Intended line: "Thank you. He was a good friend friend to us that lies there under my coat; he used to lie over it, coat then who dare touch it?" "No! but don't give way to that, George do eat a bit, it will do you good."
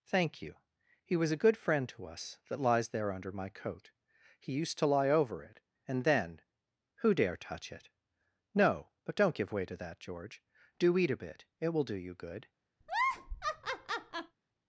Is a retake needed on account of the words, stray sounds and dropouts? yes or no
yes